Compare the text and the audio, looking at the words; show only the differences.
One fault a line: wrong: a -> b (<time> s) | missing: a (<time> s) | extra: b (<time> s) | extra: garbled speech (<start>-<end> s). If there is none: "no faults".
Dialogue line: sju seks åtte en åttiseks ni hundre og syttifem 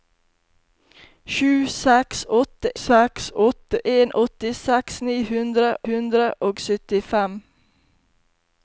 extra: seks åtte (2.8 s)
extra: hundre (5.9 s)